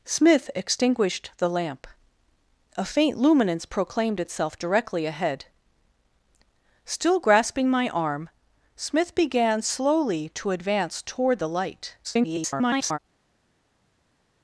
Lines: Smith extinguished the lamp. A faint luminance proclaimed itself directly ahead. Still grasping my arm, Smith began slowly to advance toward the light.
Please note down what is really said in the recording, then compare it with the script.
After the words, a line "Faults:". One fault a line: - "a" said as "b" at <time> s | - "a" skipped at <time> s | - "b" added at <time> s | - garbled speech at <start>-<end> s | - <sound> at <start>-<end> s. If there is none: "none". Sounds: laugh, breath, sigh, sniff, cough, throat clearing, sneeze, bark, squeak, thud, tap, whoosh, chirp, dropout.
Smith extinguished the lamp. A faint luminance proclaimed itself directly ahead. Still grasping my arm, Smith began slowly to advance toward the light. [garbled]
Faults:
- garbled speech at 12.0-13.0 s